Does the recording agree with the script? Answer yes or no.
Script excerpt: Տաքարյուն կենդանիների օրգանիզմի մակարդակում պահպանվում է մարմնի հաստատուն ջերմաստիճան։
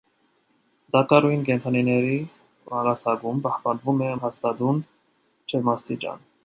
no